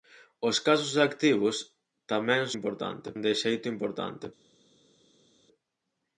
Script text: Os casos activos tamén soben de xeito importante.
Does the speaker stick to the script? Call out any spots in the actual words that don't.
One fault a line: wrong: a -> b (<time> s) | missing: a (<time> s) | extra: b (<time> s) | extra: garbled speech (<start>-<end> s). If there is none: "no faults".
wrong: soben -> importante (2.6 s)